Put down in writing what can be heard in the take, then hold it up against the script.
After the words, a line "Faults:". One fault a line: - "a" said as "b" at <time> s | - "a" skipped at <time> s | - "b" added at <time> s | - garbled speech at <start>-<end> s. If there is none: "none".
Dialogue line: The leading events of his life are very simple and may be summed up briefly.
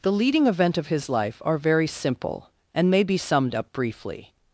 The leading event of his life are very simple and may be summed up briefly.
Faults:
- "events" said as "event" at 0.5 s